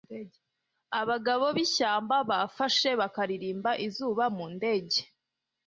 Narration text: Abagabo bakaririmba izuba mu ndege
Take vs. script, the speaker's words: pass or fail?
fail